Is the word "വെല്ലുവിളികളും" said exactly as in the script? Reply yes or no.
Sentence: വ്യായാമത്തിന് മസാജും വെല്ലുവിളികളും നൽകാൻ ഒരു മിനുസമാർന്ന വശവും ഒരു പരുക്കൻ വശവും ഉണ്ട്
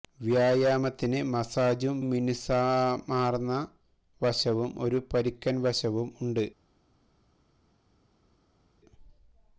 no